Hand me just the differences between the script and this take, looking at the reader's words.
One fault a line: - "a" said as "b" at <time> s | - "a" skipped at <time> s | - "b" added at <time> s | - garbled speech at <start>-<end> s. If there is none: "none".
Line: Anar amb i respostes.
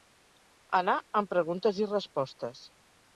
- "preguntes" added at 1.3 s